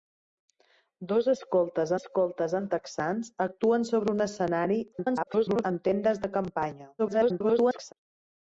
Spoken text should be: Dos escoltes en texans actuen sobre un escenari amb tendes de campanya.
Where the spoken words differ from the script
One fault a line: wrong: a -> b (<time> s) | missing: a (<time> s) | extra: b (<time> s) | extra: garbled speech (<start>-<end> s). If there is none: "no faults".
extra: escoltes (2.0 s)
extra: garbled speech (4.9-5.6 s)
extra: garbled speech (7.0-7.9 s)